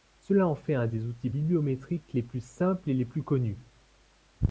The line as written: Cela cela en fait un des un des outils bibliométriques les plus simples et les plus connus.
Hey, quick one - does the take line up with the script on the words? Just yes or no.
no